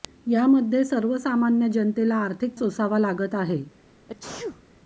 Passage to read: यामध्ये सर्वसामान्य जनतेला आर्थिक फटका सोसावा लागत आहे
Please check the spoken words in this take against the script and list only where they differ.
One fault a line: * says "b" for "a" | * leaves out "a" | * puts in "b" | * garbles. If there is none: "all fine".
* leaves out "फटका"